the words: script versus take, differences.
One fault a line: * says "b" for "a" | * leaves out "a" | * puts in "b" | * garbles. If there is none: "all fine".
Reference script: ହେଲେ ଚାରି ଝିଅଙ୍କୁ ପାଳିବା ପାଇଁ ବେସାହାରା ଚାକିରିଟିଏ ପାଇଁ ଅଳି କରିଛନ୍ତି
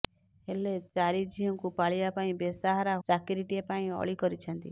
all fine